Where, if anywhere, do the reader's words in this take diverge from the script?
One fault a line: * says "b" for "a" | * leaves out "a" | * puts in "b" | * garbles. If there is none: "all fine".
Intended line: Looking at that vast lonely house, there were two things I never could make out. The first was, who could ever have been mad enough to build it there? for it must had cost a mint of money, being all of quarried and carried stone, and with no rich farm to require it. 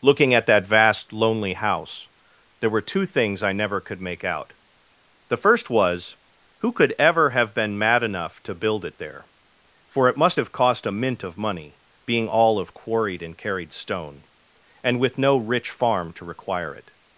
* says "have" for "had"